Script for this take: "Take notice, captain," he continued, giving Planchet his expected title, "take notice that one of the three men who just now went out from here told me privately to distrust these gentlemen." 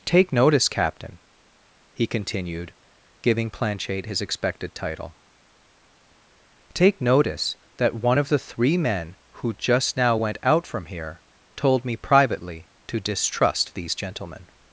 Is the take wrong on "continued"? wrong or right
right